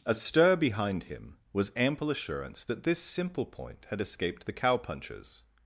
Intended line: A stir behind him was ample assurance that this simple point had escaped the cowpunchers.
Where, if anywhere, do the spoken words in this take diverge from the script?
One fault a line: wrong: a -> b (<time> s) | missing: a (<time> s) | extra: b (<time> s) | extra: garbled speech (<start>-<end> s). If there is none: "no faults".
no faults